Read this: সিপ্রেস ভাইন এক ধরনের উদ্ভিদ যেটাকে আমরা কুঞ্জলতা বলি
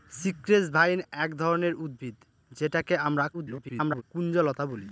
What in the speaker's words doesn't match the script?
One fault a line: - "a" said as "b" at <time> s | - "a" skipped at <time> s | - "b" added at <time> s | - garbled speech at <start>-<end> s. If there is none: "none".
- garbled speech at 3.3-4.0 s